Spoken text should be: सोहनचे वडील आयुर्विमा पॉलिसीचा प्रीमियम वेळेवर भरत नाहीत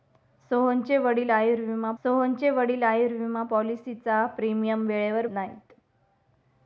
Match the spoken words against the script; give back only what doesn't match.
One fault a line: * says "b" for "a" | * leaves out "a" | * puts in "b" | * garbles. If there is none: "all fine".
* puts in "सोहनचे वडील आयुर्विमा"
* leaves out "भरत"